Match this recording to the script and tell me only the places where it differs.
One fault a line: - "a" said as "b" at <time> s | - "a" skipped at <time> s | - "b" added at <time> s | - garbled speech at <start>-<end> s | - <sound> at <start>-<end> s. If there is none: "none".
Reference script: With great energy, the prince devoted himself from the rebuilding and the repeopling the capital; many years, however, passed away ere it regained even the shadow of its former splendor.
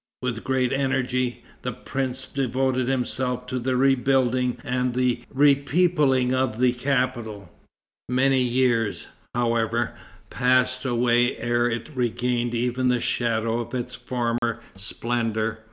- "from" said as "to" at 3.5 s
- "of" added at 6.3 s
- dropout at 14.4-14.4 s